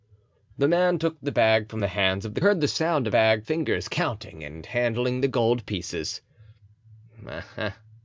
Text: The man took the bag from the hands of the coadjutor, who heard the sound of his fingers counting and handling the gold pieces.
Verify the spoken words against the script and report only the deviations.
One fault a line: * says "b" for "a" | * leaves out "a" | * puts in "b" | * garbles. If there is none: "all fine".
* leaves out "coadjutor who"
* says "bag" for "his"